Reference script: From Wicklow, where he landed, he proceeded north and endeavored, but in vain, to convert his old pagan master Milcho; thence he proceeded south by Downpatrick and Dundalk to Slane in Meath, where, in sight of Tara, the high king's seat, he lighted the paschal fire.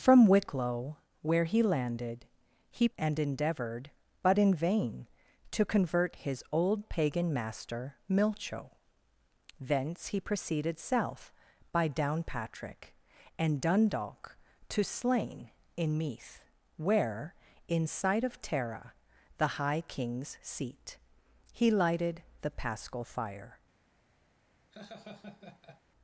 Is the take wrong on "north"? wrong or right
wrong